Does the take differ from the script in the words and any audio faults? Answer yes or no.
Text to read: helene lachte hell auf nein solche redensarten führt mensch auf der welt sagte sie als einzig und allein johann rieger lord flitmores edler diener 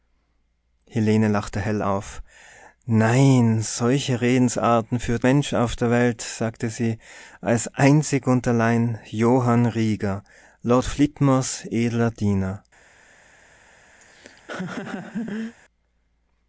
yes